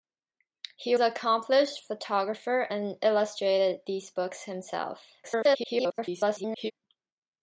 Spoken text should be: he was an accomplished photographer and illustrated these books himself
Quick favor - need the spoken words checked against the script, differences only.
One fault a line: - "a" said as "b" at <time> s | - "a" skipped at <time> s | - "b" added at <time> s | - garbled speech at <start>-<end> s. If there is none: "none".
- "was" skipped at 0.9 s
- garbled speech at 5.2-6.7 s